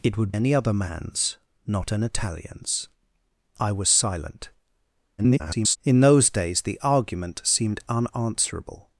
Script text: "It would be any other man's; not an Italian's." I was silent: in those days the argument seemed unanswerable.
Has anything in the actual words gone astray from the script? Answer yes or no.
yes